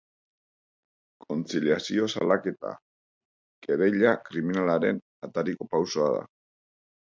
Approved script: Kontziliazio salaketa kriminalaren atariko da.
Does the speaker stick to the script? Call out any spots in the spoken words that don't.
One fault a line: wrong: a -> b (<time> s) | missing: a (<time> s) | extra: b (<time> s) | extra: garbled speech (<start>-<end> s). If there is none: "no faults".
extra: kereila (3.7 s)
extra: pausoa (5.8 s)